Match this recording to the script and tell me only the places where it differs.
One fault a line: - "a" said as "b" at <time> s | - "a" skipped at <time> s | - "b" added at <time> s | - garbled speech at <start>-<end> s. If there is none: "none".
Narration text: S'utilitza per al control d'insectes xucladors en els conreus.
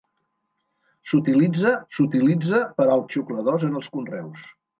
- "s'utilitza" added at 2.0 s
- "control d'insectes" skipped at 3.0 s